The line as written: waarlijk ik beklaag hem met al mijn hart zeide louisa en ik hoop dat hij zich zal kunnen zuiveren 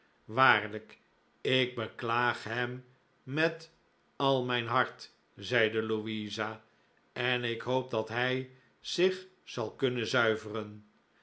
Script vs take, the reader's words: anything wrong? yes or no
no